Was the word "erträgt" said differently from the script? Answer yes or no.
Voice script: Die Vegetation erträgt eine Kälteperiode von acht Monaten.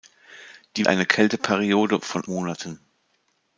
yes